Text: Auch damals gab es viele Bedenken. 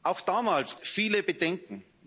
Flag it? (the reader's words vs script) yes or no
yes